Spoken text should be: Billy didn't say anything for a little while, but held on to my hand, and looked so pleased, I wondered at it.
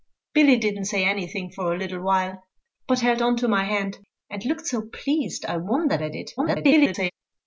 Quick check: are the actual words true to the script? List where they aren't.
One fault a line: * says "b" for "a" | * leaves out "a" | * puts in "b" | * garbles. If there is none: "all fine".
* garbles